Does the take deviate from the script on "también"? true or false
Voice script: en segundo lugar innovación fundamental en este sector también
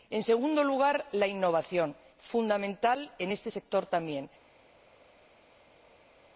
false